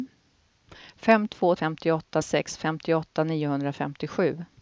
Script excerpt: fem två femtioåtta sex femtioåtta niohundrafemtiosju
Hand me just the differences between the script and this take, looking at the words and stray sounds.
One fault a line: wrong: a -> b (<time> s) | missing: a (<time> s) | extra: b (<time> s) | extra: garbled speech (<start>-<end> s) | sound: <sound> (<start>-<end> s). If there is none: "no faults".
no faults